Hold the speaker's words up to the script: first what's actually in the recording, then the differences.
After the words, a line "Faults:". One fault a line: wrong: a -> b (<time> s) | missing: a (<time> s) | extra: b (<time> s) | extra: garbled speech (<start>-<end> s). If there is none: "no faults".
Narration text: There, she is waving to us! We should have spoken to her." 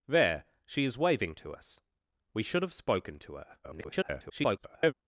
There, she is waving to us! We should have spoken to her." [garbled]
Faults:
extra: garbled speech (3.6-4.9 s)